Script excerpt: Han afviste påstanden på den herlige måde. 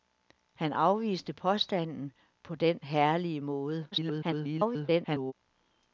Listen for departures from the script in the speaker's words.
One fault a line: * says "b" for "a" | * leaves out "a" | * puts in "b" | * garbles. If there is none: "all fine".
* garbles